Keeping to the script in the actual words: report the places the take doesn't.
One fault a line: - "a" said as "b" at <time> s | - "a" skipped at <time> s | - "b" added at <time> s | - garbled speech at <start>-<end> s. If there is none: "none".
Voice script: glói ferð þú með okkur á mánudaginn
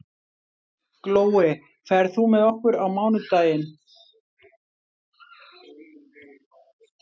none